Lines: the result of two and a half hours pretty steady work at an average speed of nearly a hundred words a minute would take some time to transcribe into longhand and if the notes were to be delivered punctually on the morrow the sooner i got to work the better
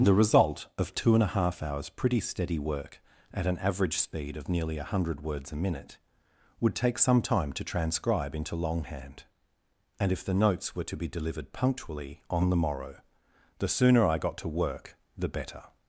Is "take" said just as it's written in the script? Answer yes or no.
yes